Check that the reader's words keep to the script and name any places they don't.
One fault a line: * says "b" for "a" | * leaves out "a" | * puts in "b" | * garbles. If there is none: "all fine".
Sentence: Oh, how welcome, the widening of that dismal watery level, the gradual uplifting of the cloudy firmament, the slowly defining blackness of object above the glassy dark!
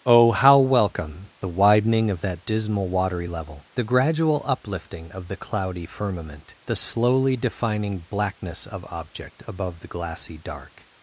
all fine